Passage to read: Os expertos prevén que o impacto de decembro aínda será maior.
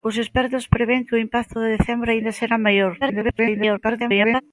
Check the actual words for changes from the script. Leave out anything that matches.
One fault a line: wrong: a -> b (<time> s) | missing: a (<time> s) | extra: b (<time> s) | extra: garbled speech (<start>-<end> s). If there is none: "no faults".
extra: garbled speech (3.0-4.4 s)